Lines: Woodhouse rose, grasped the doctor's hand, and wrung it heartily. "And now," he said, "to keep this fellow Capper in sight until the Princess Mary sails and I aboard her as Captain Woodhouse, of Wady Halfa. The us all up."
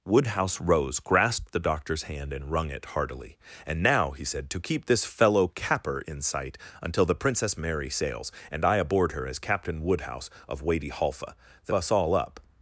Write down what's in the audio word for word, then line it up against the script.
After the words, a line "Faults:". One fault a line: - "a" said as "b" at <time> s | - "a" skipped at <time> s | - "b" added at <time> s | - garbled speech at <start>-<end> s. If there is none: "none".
Woodhouse rose, grasped the doctor's hand, and wrung it heartily. "And now," he said, "to keep this fellow Capper in sight until the Princess Mary sails and I aboard her as Captain Woodhouse, of Wady Halfa. The us all up."
Faults:
none